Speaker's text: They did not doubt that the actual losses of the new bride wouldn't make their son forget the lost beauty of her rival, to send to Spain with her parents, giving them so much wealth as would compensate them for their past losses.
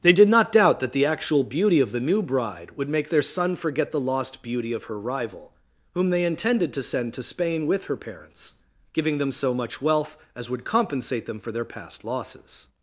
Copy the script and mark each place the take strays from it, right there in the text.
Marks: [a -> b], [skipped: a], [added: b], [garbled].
They did not doubt that the actual [losses -> beauty] of the new bride [wouldn't -> would] make their son forget the lost beauty of her rival, [added: whom they intended] to send to Spain with her parents, giving them so much wealth as would compensate them for their past losses.